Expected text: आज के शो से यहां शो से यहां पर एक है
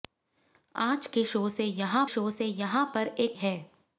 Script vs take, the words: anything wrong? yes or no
no